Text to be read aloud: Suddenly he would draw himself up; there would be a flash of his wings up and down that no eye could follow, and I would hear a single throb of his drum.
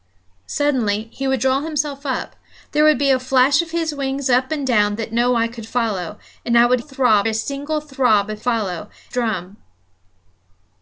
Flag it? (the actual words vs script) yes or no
yes